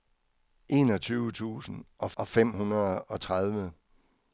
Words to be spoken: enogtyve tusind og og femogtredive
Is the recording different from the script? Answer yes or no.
no